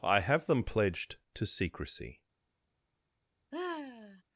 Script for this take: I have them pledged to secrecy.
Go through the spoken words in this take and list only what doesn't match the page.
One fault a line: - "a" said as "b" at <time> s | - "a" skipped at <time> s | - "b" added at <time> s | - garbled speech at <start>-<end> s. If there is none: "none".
none